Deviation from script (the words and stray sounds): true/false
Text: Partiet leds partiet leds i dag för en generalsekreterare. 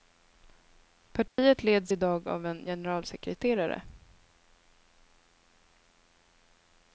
true